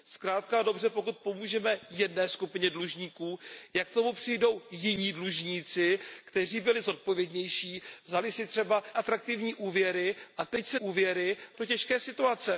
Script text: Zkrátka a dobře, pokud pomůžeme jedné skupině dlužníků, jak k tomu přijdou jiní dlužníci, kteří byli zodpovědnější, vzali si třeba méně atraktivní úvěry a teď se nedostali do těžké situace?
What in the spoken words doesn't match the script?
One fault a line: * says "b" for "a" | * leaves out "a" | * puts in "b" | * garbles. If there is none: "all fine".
* leaves out "méně"
* says "úvěry" for "nedostali"